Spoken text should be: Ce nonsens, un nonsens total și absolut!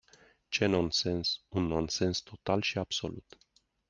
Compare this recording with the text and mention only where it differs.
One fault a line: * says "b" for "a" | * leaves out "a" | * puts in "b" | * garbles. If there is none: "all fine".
all fine